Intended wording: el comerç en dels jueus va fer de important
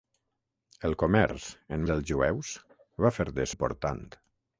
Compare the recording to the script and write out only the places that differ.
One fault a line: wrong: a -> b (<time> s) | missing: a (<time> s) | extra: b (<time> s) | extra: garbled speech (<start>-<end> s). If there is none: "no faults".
no faults